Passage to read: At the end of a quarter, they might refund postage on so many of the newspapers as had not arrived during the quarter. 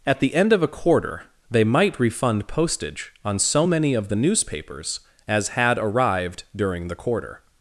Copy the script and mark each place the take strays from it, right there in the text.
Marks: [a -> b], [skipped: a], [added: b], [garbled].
At the end of a quarter, they might refund postage on so many of the newspapers as had [skipped: not] arrived during the quarter.